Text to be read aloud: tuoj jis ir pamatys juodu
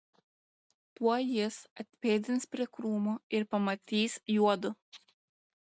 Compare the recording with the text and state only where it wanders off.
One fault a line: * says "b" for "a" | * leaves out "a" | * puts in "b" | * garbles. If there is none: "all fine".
* puts in "atpėdins prie krūmo"